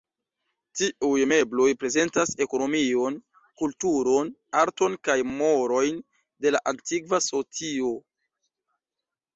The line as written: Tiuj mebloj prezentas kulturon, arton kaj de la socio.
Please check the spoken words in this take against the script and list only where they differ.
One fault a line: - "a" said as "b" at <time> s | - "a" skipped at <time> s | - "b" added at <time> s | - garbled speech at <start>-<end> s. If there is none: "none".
- "ekonomion" added at 2.4 s
- "morojn" added at 5.3 s
- "antikva" added at 6.7 s